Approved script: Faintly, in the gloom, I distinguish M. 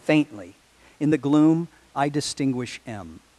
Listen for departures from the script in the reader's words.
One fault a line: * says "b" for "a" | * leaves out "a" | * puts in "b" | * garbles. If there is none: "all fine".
all fine